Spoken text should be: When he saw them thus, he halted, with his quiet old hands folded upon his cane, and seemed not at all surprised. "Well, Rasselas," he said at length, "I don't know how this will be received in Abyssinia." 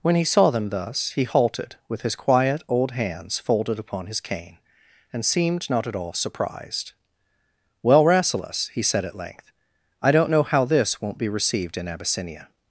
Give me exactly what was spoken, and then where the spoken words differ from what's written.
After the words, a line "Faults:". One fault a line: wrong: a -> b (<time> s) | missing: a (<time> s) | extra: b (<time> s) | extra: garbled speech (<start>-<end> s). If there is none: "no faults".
When he saw them thus, he halted, with his quiet old hands folded upon his cane, and seemed not at all surprised. "Well, Rasselas," he said at length, "I don't know how this won't be received in Abyssinia."
Faults:
wrong: will -> won't (11.0 s)